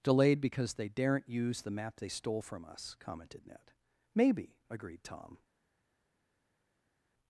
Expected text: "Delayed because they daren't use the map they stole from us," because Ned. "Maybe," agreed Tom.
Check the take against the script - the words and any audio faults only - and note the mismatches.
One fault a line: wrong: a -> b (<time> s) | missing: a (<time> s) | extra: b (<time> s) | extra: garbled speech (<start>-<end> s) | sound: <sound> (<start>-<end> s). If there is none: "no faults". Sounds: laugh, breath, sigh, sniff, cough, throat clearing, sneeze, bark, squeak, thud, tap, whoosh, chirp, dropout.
wrong: because -> commented (3.0 s)